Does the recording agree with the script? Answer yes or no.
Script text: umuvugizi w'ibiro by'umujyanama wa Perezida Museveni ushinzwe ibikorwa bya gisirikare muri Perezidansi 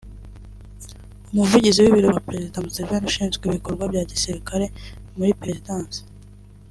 no